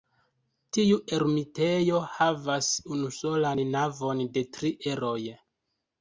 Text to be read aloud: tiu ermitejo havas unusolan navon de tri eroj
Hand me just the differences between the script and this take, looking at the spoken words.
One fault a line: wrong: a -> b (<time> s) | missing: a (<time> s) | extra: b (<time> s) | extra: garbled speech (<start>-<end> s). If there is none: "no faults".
no faults